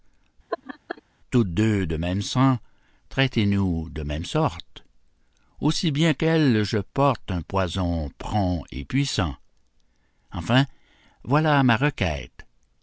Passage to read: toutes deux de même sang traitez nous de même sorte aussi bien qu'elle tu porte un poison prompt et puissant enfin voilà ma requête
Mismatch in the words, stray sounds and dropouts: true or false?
true